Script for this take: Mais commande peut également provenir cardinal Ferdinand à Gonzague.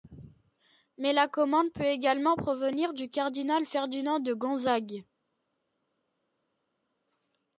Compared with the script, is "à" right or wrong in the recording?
wrong